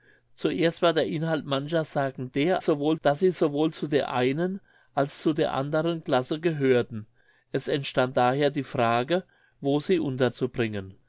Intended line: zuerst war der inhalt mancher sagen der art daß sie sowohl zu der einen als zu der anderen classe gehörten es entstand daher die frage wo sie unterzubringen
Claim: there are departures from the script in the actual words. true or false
true